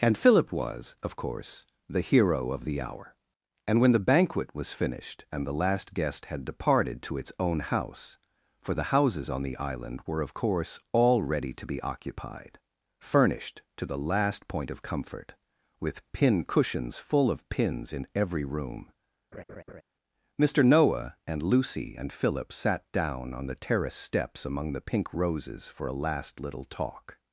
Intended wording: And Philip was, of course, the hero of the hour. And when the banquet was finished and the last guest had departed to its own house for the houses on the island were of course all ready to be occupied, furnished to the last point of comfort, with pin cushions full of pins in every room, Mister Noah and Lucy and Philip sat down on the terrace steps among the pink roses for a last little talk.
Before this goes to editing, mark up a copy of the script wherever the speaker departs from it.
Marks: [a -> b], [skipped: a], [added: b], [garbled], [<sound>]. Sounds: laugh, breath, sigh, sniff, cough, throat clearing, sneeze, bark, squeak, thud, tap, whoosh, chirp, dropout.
And Philip was, of course, the hero of the hour. And when the banquet was finished and the last guest had departed to its own house for the houses on the island were of course all ready to be occupied, furnished to the last point of comfort, with pin cushions full of pins in every room, [laugh] Mister Noah and Lucy and Philip sat down on the terrace steps among the pink roses for a last little talk.